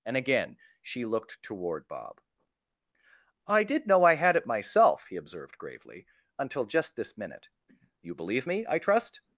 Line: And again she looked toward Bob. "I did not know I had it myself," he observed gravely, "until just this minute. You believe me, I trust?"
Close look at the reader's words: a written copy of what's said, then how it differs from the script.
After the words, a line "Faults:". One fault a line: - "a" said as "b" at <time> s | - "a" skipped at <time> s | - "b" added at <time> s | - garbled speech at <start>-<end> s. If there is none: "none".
And again she looked toward Bob. "I did know I had it myself," he observed gravely, "until just this minute. You believe me, I trust?"
Faults:
- "not" skipped at 3.9 s